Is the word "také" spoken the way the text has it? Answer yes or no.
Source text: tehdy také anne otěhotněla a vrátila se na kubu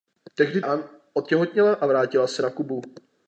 no